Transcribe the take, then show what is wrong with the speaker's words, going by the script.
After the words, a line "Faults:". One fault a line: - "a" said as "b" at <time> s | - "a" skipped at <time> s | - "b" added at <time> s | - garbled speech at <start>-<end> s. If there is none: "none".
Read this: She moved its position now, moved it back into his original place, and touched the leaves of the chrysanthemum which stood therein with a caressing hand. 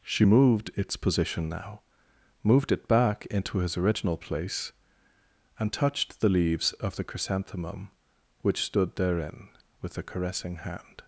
She moved its position now, moved it back into his original place, and touched the leaves of the chrysanthemum which stood therein with a caressing hand.
Faults:
none